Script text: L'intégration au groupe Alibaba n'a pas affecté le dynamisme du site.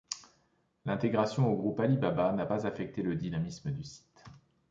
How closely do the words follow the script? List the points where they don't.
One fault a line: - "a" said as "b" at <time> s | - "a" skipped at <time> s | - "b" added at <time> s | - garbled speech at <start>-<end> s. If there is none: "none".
none